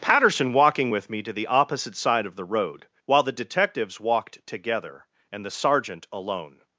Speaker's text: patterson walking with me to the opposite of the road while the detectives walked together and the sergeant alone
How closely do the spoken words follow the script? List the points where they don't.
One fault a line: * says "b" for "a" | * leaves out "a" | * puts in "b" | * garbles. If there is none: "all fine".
* puts in "side"